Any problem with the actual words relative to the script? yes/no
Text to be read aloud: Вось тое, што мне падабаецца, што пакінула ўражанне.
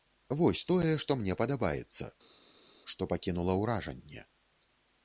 no